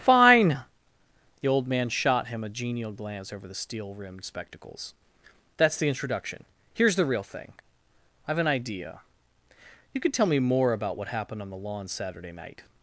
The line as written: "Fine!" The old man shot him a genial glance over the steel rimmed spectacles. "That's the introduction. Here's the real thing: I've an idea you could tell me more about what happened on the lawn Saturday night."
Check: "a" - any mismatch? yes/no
no